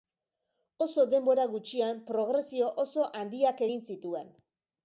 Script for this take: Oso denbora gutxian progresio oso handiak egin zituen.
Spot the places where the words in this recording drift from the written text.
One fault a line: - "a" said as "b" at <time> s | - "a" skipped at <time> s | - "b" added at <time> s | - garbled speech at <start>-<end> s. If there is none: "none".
none